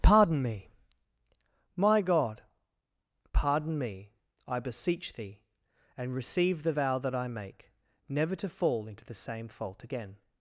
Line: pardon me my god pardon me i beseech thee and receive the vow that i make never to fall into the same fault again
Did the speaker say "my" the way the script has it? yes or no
yes